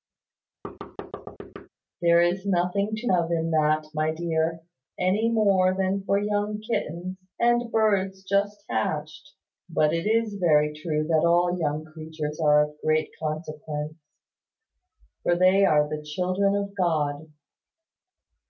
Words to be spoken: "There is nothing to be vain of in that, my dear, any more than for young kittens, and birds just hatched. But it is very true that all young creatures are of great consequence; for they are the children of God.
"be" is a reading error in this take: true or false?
true